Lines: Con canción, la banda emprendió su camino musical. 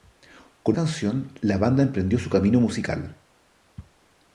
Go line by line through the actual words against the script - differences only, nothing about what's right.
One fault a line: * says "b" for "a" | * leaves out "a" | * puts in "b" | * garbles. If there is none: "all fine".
all fine